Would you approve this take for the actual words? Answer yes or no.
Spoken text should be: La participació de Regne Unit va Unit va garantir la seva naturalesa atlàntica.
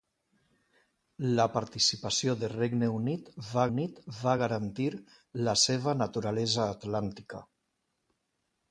yes